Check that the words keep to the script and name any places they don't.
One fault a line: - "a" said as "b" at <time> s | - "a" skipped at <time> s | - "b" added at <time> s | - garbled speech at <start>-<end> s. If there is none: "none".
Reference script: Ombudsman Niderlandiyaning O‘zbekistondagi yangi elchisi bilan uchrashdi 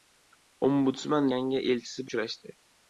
- "Niderlandiyaning O‘zbekistondagi" skipped at 1.3 s
- "bilan" skipped at 2.1 s